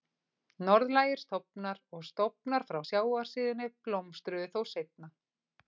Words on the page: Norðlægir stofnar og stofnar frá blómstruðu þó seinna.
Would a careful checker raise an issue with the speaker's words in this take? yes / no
yes